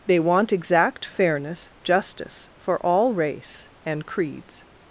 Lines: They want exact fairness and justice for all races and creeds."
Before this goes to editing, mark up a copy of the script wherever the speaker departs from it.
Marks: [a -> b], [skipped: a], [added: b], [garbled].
They want exact fairness [skipped: and] justice for all [races -> race] and creeds."